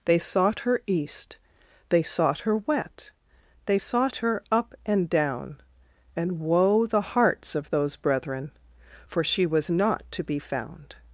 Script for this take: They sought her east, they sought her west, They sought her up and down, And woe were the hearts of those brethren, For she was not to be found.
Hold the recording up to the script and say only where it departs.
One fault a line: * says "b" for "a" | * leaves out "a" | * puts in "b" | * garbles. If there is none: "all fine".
* says "wet" for "west"
* leaves out "were"